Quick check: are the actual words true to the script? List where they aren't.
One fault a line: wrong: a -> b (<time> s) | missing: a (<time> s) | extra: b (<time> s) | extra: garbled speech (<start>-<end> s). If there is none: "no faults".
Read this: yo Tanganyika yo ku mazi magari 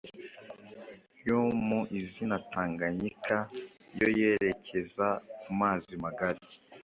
extra: mu izina (1.7 s)
extra: yerekeza (4.2 s)